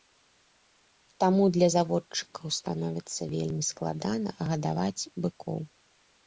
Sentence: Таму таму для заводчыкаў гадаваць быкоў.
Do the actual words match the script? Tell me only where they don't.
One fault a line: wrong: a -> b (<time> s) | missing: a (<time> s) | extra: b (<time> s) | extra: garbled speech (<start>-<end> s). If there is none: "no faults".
missing: таму (1.4 s)
extra: становіцца вельмі складана (2.6 s)